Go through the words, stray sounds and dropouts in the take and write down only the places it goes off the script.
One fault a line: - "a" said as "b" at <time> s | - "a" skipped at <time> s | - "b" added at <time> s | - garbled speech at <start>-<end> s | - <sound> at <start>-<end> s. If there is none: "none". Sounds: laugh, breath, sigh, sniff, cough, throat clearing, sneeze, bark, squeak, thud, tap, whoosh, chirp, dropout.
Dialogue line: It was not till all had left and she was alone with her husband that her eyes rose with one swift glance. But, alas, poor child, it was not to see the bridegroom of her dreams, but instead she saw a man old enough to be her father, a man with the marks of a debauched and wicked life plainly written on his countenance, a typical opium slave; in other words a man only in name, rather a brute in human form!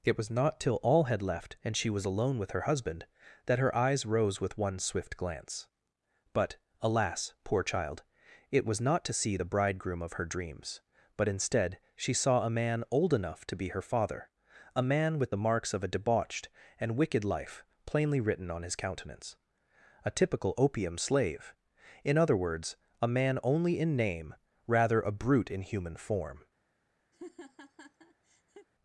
- laugh at 27.1-28.7 s